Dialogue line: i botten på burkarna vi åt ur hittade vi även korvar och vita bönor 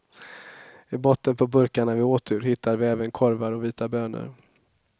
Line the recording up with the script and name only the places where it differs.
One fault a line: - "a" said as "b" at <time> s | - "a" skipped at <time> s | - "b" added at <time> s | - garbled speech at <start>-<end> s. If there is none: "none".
none